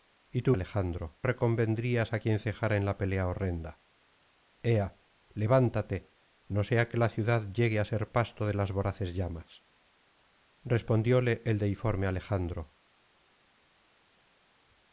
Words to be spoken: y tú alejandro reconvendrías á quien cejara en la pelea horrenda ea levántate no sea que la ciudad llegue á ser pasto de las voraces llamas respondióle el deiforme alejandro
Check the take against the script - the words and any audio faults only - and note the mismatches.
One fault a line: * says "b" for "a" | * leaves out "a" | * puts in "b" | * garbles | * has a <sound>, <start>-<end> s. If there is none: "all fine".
all fine